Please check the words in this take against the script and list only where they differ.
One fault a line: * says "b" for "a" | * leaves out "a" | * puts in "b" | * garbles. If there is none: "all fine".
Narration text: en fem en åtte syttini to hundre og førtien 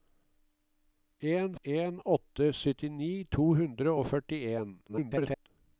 * leaves out "fem"
* garbles